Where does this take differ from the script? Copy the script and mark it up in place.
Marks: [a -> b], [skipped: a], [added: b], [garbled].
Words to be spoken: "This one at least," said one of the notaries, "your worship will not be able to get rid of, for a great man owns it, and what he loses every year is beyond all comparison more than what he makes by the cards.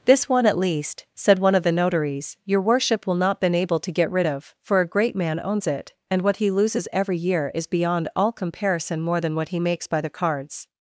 "This one at least," said one of the notaries, "your worship will not [be -> been] able to get rid of, for a great man owns it, and what he loses every year is beyond all comparison more than what he makes by the cards.